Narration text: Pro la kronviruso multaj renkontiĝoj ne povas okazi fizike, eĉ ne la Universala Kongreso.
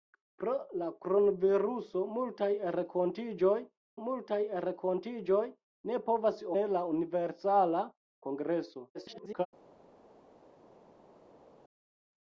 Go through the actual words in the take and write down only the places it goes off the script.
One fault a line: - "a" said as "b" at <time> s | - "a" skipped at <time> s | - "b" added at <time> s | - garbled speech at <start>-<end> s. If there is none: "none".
- "multaj renkontiĝoj" added at 4.0 s
- "okazi fizike eĉ" skipped at 6.4 s
- garbled speech at 8.9-9.5 s